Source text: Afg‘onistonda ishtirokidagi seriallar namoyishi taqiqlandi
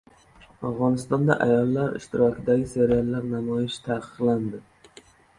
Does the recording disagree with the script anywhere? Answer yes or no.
yes